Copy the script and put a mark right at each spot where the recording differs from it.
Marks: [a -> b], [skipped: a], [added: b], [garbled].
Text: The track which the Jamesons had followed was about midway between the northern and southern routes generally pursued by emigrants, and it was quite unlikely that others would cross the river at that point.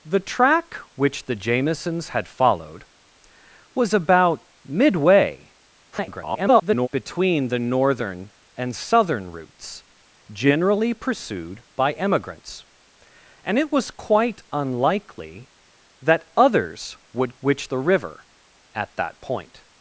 The track which the Jamesons had followed was about midway [garbled] between the northern and southern routes generally pursued by emigrants, and it was quite unlikely that others would [cross -> which] the river at that point.